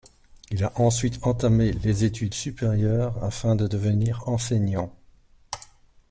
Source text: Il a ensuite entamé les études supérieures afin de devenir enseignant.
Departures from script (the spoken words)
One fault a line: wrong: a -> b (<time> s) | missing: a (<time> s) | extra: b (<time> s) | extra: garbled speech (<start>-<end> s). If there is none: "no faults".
no faults